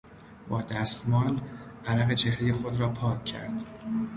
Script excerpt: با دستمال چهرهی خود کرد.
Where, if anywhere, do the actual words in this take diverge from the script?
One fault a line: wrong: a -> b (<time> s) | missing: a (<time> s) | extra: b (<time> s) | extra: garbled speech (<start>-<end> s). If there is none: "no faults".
extra: عرق (1.9 s)
extra: را پاک (2.8 s)